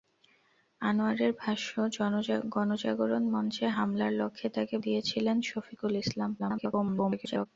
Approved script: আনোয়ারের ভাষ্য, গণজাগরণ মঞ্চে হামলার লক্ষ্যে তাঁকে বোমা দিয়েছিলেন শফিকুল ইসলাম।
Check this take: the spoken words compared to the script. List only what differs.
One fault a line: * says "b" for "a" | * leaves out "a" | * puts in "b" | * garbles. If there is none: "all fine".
* leaves out "বোমা"
* garbles